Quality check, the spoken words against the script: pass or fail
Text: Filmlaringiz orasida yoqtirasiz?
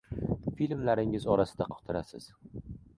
pass